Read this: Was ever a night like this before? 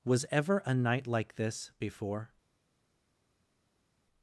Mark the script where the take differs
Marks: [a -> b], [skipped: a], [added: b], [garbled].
Was ever a night like this before?